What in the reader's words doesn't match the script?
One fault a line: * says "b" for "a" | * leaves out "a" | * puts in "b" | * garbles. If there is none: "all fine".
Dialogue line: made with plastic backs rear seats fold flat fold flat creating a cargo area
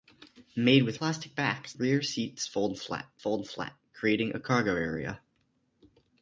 all fine